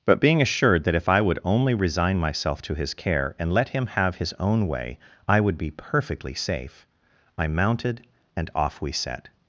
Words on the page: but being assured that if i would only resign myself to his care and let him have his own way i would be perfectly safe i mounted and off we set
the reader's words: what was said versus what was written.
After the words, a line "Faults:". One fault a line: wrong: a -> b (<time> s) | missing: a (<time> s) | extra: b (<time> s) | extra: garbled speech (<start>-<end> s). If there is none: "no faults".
but being assured that if i would only resign myself to his care and let him have his own way i would be perfectly safe i mounted and off we set
Faults:
no faults